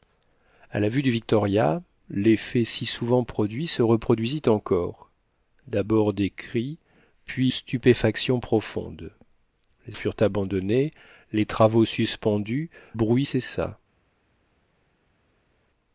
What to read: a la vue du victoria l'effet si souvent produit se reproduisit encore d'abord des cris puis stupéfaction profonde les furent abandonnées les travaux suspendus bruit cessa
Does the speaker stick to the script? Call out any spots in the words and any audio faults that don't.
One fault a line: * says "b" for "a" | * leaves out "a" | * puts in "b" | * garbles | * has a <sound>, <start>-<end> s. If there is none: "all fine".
all fine